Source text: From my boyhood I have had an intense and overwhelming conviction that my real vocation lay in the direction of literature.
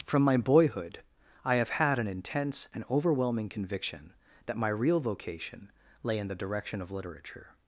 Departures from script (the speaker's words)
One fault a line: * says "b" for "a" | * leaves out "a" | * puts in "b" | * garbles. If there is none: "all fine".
all fine